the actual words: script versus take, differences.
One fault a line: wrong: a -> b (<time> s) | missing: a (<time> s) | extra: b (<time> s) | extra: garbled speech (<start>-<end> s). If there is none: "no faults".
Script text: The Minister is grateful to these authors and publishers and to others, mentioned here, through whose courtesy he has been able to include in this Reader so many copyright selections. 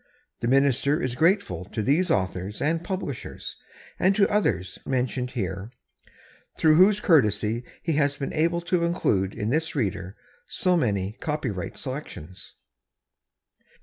no faults